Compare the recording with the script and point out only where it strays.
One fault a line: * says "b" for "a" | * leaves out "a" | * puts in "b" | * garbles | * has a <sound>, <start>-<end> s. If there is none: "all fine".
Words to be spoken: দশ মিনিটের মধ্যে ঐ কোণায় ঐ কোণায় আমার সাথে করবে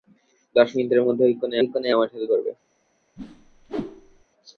* has a whoosh, 3.2-4.2 s